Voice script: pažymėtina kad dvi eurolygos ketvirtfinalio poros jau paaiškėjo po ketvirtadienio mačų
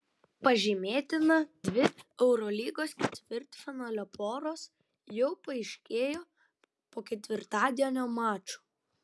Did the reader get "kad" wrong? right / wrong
wrong